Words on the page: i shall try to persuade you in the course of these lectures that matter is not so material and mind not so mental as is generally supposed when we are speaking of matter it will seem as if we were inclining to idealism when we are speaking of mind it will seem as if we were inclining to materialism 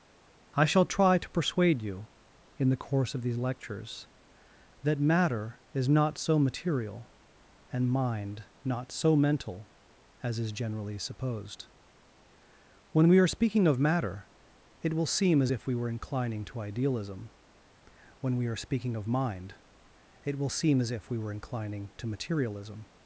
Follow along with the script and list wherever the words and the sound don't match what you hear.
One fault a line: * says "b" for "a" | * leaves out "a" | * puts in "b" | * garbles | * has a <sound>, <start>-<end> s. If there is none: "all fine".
all fine